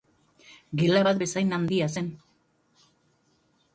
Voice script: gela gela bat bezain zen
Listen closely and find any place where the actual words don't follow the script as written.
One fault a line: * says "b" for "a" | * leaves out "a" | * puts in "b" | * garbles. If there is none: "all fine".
* leaves out "gela"
* puts in "handia"